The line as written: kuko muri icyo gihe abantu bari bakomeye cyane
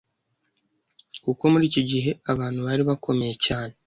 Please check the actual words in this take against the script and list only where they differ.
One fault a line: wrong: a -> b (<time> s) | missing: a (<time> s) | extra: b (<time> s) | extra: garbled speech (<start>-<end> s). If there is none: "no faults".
no faults